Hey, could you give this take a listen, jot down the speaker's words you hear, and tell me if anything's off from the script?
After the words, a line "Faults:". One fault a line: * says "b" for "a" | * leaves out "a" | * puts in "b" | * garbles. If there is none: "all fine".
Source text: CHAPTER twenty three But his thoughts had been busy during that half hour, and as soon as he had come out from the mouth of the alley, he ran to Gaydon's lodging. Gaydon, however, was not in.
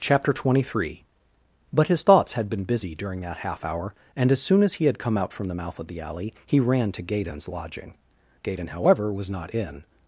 CHAPTER twenty three But his thoughts had been busy during that half hour, and as soon as he had come out from the mouth of the alley, he ran to Gaydon's lodging. Gaydon, however, was not in.
Faults:
all fine